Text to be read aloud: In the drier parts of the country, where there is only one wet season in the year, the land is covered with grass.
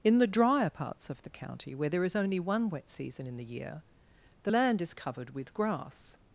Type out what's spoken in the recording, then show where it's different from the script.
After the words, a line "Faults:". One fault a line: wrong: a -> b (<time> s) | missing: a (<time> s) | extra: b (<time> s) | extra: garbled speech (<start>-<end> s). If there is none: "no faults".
In the drier parts of the county, where there is only one wet season in the year, the land is covered with grass.
Faults:
wrong: country -> county (1.3 s)